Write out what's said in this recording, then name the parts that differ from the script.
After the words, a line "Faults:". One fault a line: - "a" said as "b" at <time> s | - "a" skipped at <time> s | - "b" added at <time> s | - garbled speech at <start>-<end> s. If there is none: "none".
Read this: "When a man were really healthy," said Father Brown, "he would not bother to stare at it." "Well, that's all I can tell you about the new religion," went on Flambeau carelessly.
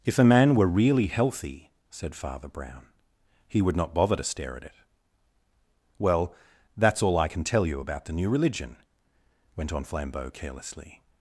"If a man were really healthy," said Father Brown, "he would not bother to stare at it." "Well, that's all I can tell you about the new religion," went on Flambeau carelessly.
Faults:
- "When" said as "If" at 0.0 s